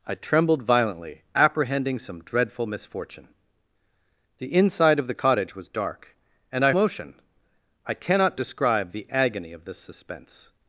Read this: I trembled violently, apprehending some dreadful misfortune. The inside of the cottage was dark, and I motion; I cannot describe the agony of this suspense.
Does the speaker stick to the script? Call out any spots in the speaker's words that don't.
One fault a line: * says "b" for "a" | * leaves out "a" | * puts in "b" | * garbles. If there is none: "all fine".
all fine